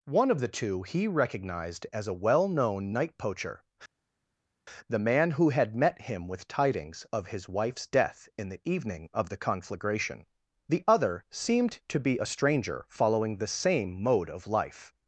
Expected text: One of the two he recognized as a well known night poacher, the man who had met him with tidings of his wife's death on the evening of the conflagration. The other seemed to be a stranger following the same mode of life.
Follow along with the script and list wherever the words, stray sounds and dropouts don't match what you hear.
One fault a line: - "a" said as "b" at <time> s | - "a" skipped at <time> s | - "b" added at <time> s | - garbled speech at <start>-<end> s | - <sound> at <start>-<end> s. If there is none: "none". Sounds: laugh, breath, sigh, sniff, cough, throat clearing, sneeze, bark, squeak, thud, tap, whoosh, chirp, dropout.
- "on" said as "in" at 8.4 s